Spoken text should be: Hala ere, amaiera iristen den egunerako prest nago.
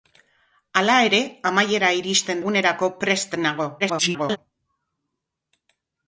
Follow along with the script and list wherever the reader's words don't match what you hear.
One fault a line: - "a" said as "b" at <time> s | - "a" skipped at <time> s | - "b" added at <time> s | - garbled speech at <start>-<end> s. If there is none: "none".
- "den" skipped at 2.4 s
- garbled speech at 3.8-4.4 s